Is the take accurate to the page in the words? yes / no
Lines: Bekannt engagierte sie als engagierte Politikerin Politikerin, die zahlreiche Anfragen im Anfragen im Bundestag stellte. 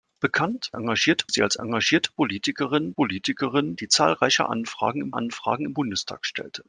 yes